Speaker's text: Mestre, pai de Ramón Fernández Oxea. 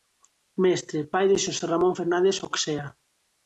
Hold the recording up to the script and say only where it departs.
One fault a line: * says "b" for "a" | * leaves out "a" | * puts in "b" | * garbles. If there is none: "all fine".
* puts in "Xosé"